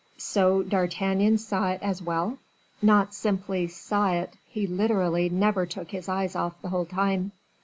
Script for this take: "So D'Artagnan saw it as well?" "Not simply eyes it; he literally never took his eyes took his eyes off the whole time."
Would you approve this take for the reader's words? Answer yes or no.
no